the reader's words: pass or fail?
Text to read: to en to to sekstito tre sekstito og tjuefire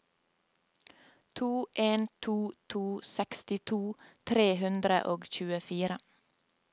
fail